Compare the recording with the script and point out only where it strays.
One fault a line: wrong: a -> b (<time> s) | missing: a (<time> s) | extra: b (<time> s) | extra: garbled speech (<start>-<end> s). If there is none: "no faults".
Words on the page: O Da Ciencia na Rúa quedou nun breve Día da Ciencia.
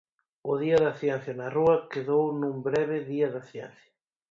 extra: Día (0.6 s)